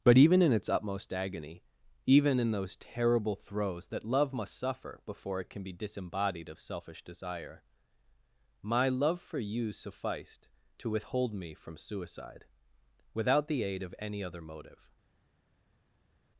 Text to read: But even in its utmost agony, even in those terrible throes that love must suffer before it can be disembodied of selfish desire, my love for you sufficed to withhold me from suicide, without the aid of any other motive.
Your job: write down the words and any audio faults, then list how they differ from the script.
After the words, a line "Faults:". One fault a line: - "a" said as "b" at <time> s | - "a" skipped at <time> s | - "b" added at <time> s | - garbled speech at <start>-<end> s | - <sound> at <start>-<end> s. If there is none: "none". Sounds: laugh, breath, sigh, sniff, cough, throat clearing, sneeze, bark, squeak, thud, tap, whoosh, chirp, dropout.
But even in its utmost agony, even in those terrible throes that love must suffer before it can be disembodied of selfish desire, my love for you sufficed to withhold me from suicide, without the aid of any other motive.
Faults:
none